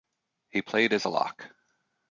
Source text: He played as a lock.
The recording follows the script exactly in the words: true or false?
true